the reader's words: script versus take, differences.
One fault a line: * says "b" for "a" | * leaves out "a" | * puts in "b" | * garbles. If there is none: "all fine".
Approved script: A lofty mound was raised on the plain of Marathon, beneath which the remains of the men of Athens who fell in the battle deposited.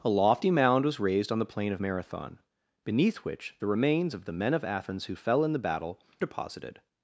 all fine